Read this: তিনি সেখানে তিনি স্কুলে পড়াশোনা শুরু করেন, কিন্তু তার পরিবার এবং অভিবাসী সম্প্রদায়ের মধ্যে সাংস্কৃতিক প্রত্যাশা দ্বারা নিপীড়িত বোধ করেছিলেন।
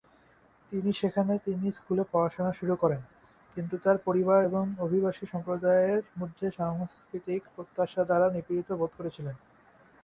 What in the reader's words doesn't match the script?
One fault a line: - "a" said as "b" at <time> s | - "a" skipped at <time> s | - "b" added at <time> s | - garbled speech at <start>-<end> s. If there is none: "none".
none